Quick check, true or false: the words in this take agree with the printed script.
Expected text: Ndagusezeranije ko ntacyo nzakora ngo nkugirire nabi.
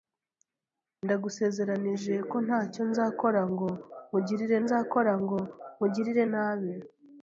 false